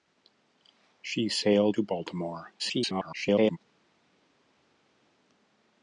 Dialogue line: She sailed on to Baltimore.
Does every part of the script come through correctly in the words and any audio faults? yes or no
no